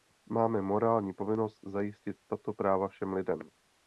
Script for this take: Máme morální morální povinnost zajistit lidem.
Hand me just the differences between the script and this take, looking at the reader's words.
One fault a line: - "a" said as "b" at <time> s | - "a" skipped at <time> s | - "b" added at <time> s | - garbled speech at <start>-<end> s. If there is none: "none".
- "morální" skipped at 1.1 s
- "tato práva všem" added at 2.3 s